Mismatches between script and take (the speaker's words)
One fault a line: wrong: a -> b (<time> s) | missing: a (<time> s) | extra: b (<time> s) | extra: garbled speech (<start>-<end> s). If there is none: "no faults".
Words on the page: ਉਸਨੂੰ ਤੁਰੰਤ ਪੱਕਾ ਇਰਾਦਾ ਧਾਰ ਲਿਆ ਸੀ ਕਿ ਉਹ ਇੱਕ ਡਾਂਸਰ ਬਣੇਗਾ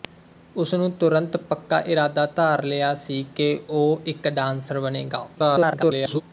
extra: garbled speech (5.3-6.2 s)